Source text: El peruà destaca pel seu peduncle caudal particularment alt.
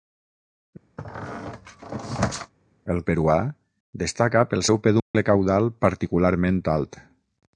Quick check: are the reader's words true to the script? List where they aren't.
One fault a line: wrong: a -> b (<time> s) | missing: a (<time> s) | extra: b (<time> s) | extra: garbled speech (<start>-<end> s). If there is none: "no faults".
no faults